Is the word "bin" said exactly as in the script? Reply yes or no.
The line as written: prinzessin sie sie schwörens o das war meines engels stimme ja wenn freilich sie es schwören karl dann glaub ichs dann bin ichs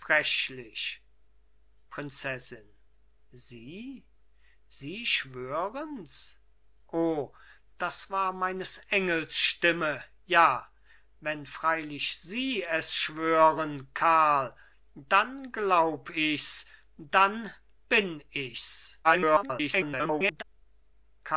yes